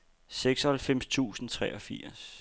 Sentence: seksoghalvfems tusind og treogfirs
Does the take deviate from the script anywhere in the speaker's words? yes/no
no